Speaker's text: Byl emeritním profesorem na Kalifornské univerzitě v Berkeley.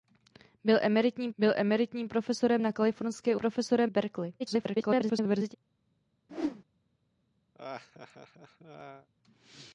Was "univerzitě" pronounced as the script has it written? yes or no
no